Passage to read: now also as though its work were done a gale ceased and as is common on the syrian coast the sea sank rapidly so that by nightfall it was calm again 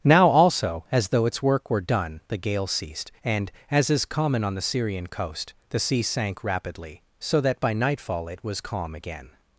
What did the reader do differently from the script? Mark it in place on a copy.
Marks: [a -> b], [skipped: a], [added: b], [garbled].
now also as though its work were done [a -> the] gale ceased and as is common on the syrian coast the sea sank rapidly so that by nightfall it was calm again